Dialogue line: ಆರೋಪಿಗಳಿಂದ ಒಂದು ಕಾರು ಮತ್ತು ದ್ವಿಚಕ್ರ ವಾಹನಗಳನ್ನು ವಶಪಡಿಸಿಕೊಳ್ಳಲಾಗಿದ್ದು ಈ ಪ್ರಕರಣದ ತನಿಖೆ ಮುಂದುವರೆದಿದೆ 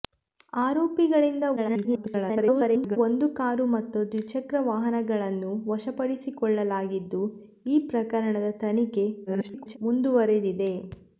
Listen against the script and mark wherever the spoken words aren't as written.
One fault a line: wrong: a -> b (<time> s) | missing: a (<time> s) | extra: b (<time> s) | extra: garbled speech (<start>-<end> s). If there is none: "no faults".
extra: garbled speech (1.6-3.0 s)
extra: garbled speech (9.3-9.8 s)